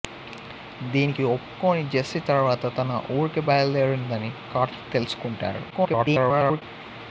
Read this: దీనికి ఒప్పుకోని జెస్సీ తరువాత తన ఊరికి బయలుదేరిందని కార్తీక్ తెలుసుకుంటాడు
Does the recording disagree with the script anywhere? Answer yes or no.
yes